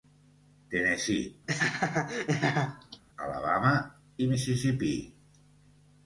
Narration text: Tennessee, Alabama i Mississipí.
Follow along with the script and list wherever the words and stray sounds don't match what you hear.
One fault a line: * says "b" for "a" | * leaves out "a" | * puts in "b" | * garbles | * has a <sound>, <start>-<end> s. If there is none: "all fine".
* has a laugh, 1.5-3.0 s